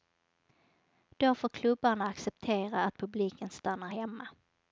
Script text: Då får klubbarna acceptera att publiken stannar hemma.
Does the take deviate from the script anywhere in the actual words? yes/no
no